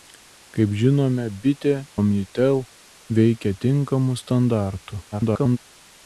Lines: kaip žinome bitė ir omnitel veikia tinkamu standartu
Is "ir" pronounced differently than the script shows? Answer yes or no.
yes